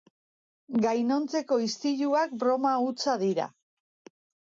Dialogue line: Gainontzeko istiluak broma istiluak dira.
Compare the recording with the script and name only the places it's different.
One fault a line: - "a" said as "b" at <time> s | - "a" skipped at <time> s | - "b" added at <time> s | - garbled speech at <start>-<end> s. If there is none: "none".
- "istiluak" said as "hutsa" at 2.9 s